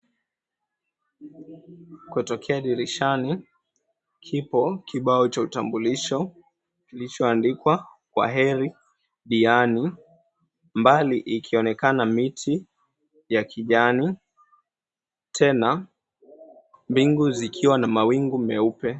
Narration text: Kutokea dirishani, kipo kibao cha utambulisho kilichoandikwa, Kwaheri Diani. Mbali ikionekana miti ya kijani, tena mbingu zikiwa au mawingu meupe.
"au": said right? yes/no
no